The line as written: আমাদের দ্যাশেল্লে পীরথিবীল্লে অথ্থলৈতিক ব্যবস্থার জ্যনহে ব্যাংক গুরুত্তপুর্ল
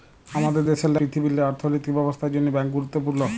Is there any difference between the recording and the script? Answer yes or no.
no